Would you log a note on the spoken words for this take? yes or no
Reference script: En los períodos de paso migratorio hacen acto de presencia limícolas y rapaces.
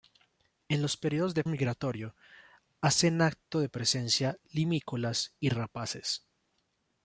yes